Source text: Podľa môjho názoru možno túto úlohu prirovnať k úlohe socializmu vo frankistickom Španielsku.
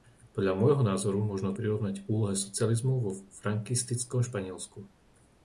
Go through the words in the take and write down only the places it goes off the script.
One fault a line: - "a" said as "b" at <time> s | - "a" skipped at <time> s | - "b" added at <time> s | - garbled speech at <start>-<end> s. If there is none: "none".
- "túto úlohu" skipped at 1.5 s